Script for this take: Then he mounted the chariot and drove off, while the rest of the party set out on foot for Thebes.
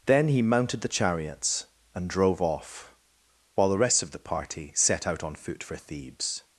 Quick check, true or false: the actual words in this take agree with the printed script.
false